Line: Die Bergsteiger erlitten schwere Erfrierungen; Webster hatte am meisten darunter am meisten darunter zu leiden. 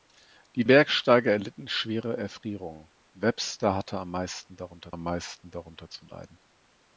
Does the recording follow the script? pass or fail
pass